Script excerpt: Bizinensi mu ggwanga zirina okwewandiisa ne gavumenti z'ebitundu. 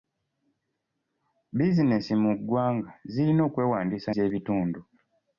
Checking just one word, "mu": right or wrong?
right